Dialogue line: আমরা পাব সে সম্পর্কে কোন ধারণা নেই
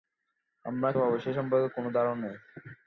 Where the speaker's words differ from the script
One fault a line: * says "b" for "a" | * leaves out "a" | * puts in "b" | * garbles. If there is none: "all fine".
all fine